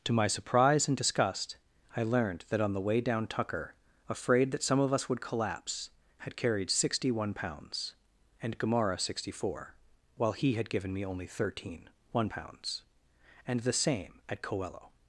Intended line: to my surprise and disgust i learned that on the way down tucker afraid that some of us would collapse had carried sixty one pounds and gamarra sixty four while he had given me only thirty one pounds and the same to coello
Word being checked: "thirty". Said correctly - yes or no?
no